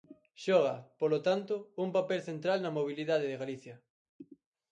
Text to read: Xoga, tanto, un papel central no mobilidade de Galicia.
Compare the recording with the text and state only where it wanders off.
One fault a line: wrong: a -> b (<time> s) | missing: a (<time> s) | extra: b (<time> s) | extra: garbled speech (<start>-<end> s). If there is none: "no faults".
extra: polo (1.0 s)
wrong: no -> na (2.6 s)